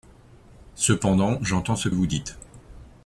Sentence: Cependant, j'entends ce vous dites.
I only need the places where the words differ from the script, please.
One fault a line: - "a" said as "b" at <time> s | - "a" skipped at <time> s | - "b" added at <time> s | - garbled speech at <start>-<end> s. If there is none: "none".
none